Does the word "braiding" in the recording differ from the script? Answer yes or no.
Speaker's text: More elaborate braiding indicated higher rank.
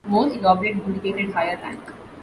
yes